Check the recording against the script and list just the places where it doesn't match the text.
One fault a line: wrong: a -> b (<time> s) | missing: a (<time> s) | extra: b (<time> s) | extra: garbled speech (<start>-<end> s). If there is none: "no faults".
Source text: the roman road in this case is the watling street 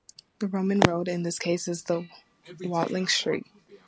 no faults